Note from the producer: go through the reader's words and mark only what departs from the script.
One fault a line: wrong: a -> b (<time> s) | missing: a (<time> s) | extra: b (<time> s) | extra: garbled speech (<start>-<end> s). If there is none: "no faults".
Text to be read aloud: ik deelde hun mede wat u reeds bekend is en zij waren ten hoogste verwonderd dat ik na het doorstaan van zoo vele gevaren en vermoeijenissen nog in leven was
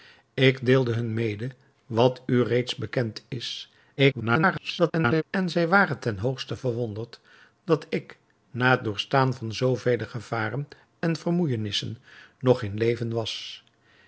extra: garbled speech (4.0-5.2 s)